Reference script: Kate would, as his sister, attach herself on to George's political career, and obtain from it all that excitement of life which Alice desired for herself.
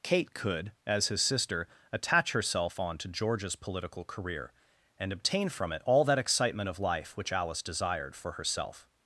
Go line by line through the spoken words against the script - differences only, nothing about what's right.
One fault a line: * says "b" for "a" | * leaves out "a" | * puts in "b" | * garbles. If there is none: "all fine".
* says "could" for "would"